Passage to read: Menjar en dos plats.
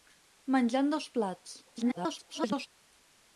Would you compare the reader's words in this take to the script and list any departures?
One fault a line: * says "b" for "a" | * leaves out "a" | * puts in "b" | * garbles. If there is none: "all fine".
* garbles